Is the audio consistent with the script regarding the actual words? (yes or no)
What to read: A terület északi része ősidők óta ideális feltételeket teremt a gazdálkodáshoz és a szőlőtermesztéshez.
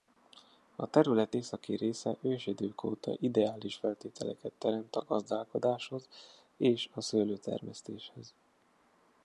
yes